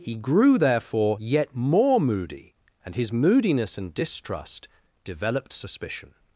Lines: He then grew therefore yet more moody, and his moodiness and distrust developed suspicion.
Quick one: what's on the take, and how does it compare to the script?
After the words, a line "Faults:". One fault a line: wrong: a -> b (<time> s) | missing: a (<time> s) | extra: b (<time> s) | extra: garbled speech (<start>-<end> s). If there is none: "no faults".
He grew therefore yet more moody, and his moodiness and distrust developed suspicion.
Faults:
missing: then (0.1 s)